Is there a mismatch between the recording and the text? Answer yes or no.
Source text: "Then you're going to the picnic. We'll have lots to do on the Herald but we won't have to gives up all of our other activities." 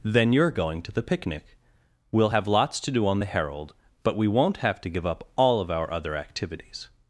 yes